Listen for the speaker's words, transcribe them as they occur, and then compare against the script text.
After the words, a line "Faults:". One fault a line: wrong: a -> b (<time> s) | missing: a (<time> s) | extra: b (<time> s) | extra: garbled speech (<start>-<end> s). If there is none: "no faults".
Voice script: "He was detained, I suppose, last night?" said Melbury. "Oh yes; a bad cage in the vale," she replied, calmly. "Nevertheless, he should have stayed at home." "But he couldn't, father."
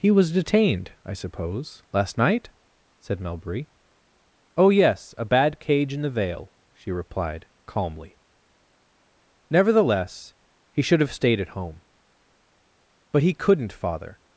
"He was detained, I suppose, last night?" said Melbury. "Oh yes; a bad cage in the vale," she replied, calmly. "Nevertheless, he should have stayed at home." "But he couldn't, father."
Faults:
no faults